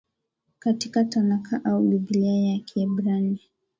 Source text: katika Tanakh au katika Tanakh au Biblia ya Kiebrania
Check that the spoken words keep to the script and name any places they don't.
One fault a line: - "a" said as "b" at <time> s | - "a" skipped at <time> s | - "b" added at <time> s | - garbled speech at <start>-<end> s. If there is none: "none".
- "katika Tanakh au" skipped at 1.8 s